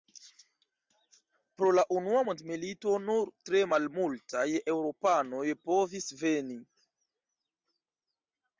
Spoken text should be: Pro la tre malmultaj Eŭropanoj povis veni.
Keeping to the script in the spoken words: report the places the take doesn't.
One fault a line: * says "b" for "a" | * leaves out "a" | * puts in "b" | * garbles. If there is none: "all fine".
* puts in "unua mondmilito nur"